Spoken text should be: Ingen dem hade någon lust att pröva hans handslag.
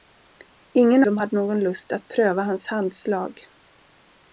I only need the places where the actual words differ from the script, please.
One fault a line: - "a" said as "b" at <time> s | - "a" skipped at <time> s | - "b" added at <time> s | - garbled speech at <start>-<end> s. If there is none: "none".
none